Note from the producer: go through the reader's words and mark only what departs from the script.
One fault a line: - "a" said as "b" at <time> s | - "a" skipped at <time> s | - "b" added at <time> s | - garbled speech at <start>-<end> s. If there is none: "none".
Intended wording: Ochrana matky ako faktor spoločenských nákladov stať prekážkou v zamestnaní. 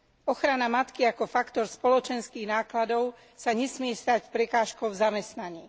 - "sa nesmie" added at 3.3 s